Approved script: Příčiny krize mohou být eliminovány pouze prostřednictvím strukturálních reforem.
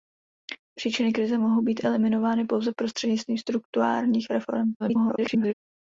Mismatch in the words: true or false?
true